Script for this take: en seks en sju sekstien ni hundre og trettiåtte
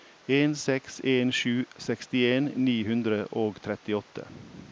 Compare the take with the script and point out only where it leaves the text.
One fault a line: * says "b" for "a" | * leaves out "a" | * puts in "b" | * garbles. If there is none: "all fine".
all fine